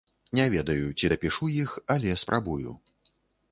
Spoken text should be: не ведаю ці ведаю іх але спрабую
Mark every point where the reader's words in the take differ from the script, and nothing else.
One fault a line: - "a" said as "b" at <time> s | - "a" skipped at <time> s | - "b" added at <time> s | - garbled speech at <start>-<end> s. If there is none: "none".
- "ведаю" said as "дапішу" at 1.1 s